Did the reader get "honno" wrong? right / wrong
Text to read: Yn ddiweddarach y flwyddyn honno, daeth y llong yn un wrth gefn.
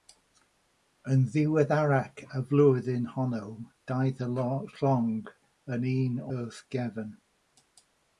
right